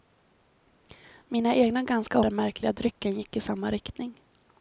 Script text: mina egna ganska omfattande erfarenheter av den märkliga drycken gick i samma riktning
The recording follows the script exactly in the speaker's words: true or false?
false